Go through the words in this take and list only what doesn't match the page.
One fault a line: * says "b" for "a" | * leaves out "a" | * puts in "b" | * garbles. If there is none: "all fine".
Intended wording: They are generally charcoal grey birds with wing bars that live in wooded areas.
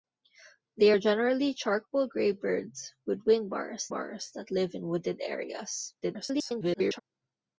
* puts in "bars"
* garbles